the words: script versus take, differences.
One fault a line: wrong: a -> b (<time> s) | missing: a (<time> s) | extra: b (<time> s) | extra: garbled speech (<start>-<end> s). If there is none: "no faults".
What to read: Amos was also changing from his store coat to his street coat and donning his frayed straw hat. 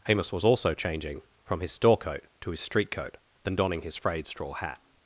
wrong: and -> then (3.4 s)